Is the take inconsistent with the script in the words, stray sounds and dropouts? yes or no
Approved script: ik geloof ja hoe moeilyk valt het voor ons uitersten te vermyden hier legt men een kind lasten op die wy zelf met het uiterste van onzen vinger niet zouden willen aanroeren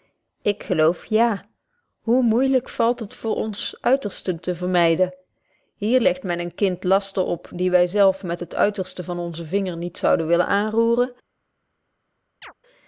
yes